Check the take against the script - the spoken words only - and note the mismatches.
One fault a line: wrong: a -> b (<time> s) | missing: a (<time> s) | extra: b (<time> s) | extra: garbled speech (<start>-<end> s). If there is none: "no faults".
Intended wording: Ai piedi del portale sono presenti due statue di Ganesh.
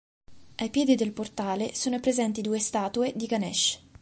no faults